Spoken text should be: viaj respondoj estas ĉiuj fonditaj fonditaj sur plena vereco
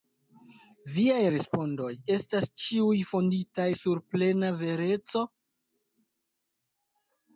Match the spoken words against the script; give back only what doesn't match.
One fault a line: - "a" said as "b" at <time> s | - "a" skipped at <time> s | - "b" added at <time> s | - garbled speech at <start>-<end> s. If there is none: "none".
- "fonditaj" skipped at 3.7 s